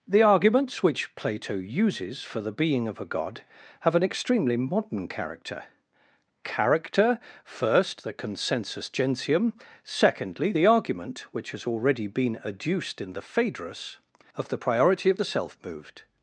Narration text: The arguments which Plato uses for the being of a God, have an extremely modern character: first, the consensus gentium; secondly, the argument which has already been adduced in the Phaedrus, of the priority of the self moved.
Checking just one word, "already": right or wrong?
right